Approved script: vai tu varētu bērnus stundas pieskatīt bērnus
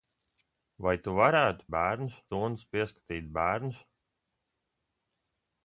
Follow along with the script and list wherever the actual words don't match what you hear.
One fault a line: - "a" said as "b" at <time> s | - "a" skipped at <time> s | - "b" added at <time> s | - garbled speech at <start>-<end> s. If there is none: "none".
none